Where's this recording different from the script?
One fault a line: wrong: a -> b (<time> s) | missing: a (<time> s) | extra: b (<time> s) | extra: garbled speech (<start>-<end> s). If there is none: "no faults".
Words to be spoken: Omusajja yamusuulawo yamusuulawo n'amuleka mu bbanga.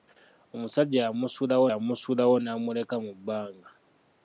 no faults